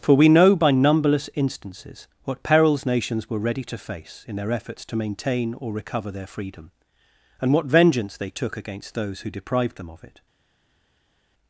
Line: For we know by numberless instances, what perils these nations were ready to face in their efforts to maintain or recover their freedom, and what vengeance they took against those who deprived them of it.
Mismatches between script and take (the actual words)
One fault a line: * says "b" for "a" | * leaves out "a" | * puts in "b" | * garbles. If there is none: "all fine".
* leaves out "these"